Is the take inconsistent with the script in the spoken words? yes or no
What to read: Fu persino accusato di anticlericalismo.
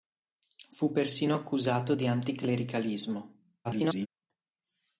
yes